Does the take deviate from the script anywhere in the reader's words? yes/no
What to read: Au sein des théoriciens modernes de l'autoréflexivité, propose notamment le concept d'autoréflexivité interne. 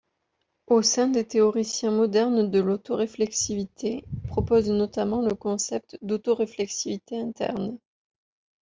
no